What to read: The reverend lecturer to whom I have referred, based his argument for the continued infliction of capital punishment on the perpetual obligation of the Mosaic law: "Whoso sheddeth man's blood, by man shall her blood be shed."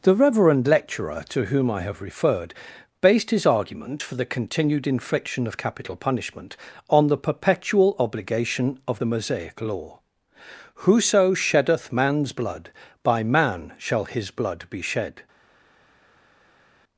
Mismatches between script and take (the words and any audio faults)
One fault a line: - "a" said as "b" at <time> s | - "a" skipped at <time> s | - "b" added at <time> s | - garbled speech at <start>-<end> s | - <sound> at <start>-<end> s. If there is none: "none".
- "her" said as "his" at 14.1 s